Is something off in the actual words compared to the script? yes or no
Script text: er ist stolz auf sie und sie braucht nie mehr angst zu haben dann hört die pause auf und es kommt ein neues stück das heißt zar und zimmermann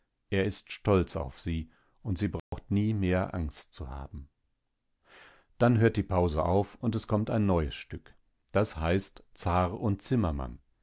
no